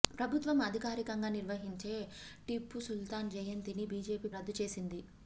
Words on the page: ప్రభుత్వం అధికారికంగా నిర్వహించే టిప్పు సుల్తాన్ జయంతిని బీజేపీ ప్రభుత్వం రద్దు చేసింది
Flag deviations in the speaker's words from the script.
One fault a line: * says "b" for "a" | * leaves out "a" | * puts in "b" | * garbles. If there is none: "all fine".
* leaves out "ప్రభుత్వం"